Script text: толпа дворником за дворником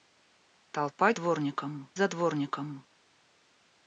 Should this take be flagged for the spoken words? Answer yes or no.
no